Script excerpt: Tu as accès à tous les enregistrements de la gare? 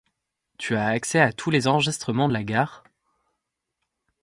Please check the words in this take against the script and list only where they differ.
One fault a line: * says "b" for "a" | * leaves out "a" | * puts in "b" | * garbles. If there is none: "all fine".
all fine